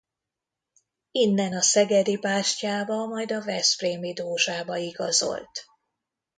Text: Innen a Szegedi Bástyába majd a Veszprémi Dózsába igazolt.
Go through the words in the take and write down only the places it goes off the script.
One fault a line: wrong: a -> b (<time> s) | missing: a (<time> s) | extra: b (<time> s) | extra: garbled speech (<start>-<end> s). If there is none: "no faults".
no faults